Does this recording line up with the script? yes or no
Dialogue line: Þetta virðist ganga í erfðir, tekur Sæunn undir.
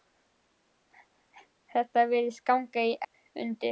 no